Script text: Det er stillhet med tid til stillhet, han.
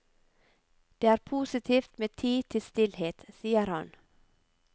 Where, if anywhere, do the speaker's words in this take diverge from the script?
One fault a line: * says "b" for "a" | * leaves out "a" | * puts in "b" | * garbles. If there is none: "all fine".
* says "positivt" for "stillhet"
* puts in "sier"